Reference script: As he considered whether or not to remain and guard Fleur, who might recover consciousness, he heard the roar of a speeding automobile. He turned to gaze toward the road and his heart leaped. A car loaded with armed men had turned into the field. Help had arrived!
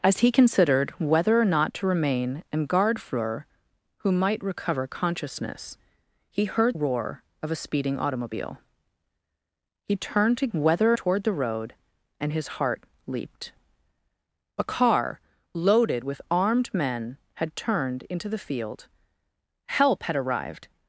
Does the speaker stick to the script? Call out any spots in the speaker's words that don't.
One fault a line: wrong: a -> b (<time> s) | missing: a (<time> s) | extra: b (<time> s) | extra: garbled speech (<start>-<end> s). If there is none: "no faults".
missing: the (6.8 s)
wrong: gaze -> whether (10.5 s)